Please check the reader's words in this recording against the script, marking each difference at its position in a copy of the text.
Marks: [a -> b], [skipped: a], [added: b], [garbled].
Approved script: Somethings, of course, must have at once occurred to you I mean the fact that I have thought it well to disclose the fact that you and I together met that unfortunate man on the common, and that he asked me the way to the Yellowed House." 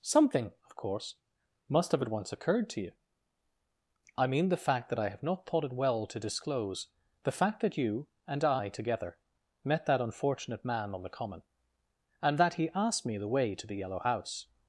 [Somethings, -> Something] of course, must have at once occurred to you I mean the fact that I have [added: not] thought it well to disclose the fact that you and I together met that unfortunate man on the common, and that he asked me the way to the [Yellowed -> Yellow] House."